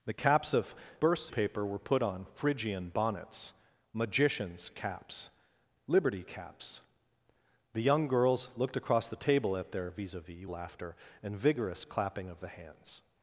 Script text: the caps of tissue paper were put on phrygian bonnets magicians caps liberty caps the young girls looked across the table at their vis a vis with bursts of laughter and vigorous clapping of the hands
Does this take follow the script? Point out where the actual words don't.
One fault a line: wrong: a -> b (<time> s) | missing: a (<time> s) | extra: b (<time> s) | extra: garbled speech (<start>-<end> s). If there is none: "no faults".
wrong: tissue -> bursts (1.0 s)
missing: with bursts of (10.5 s)